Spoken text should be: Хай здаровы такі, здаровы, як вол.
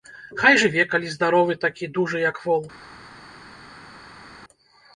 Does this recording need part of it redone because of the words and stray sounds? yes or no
yes